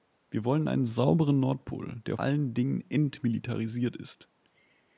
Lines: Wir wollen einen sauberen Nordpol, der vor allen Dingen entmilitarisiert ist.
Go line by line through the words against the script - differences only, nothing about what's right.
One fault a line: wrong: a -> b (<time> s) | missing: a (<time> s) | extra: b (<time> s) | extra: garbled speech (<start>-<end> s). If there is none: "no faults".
missing: vor (2.2 s)